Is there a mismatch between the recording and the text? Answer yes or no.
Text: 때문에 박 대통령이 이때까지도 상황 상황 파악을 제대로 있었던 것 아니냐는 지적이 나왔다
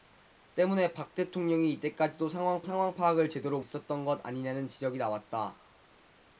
no